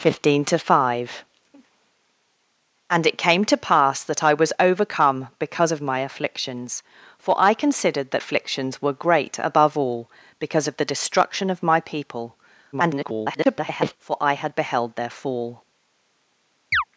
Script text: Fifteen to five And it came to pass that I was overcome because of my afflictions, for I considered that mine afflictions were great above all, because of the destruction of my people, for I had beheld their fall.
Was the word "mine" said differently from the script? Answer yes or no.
yes